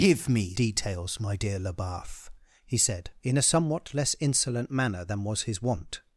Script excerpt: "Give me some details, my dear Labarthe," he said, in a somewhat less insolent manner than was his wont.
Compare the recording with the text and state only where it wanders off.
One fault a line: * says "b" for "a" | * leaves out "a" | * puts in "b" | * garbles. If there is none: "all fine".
* leaves out "some"